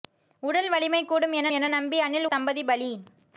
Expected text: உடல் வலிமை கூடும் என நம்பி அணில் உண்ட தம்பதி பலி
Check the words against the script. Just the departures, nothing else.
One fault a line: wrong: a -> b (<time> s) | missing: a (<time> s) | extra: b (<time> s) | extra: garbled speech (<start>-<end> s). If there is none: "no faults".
extra: என (1.5 s)
missing: உண்ட (2.3 s)